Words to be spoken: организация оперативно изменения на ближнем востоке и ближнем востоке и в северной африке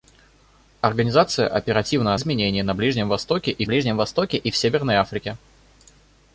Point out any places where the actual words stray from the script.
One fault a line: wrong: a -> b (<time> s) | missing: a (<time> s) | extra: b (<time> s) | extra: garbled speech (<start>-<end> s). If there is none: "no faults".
no faults